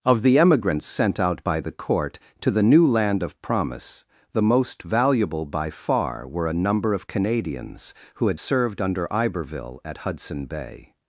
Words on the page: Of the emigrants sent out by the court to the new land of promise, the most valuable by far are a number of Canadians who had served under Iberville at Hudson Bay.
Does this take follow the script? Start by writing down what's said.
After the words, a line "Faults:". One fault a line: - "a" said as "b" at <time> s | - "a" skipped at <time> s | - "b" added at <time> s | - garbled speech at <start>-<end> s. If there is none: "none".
Of the emigrants sent out by the court to the new land of promise, the most valuable by far were a number of Canadians who had served under Iberville at Hudson Bay.
Faults:
- "are" said as "were" at 6.3 s